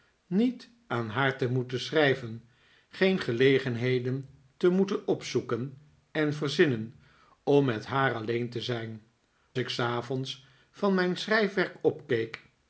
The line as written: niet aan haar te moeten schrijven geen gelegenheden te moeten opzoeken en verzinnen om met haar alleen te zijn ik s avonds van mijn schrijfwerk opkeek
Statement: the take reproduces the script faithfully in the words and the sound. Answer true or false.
true